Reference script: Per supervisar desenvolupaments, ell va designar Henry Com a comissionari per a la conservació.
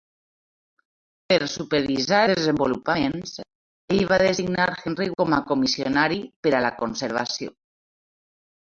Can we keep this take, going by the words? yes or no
yes